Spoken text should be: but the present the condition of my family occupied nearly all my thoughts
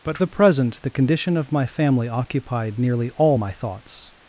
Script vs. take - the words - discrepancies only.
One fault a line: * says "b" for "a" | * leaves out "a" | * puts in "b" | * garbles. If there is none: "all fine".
all fine